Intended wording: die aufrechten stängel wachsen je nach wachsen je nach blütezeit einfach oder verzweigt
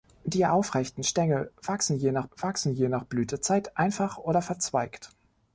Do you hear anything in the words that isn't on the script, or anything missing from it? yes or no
no